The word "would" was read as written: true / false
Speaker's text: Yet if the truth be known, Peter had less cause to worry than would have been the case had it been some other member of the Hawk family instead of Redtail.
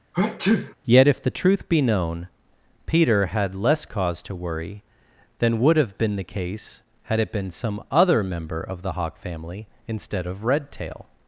true